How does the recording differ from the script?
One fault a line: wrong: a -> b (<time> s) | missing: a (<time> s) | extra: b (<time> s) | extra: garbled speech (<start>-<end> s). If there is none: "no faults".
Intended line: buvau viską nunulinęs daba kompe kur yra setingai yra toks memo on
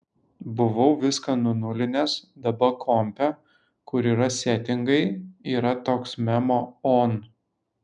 no faults